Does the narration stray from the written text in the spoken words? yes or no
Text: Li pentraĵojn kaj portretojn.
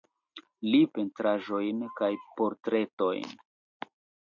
no